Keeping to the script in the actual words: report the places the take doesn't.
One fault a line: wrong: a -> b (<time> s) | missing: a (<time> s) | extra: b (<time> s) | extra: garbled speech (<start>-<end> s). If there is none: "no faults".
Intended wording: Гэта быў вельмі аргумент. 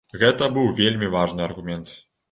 extra: важны (1.2 s)